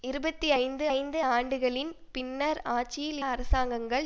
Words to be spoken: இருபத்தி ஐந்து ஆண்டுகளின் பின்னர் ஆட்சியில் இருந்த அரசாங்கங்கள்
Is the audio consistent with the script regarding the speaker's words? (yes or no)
no